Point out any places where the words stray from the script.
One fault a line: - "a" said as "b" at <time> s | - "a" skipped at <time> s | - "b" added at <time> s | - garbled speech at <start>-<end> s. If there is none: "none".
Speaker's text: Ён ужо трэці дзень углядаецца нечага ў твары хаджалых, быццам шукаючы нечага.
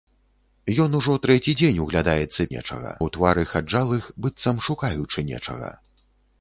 none